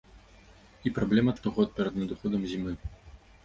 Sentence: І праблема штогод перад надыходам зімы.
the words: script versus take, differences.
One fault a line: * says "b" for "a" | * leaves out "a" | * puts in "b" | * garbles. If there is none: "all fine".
all fine